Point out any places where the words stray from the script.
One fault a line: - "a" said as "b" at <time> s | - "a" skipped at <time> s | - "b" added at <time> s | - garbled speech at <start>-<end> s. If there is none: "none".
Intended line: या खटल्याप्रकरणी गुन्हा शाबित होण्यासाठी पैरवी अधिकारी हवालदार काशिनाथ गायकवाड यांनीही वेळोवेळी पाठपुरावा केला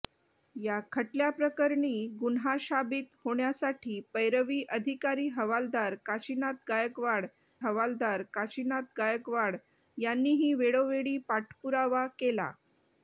- "हवालदार काशिनाथ गायकवाड" added at 7.6 s